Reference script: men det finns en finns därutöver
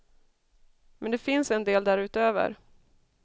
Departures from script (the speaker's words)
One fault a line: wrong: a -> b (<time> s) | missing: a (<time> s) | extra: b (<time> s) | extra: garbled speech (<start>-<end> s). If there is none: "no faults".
wrong: finns -> del (1.6 s)